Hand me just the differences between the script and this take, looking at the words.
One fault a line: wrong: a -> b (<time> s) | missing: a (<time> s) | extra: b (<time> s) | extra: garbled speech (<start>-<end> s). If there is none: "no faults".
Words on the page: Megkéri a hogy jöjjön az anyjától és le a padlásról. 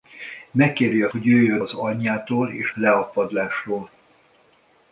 no faults